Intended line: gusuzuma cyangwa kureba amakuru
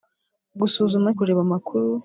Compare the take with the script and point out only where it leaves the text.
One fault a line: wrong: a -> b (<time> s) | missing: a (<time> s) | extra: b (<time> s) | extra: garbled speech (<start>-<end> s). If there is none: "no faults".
missing: cyangwa (1.1 s)